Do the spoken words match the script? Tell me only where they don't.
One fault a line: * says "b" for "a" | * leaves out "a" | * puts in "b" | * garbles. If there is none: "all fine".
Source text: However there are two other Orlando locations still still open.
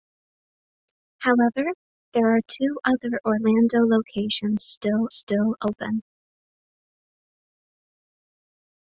all fine